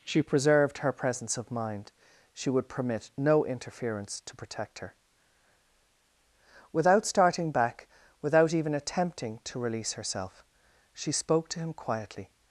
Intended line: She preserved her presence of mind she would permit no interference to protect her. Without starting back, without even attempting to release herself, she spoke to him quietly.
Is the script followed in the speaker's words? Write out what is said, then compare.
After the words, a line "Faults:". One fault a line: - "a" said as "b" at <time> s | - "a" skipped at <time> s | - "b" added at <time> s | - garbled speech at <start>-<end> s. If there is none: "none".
She preserved her presence of mind she would permit no interference to protect her. Without starting back, without even attempting to release herself, she spoke to him quietly.
Faults:
none